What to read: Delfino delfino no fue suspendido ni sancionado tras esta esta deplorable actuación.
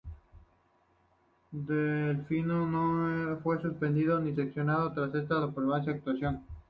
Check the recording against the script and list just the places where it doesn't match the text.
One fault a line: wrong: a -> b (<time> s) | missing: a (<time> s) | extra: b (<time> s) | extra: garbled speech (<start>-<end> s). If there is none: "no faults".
missing: delfino (2.6 s)
missing: esta (5.4 s)